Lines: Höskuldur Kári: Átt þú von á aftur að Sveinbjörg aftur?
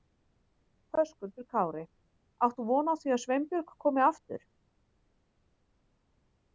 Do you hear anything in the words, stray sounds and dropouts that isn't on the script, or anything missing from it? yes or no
yes